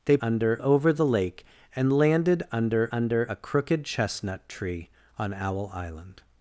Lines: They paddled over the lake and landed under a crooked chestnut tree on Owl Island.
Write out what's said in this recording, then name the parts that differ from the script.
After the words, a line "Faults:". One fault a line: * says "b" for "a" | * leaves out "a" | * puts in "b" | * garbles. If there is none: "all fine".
They under over the lake and landed under under a crooked chestnut tree on Owl Island.
Faults:
* says "under" for "paddled"
* puts in "under"